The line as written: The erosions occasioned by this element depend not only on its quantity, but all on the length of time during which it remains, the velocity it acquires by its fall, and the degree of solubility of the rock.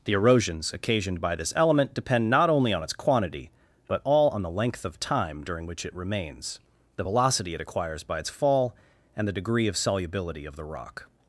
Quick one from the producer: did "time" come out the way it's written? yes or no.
yes